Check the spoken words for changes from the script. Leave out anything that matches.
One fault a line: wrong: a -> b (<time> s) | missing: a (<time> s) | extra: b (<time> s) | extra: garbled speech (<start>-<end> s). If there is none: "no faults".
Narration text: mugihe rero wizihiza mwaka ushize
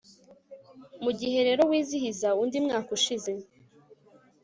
extra: undi (2.4 s)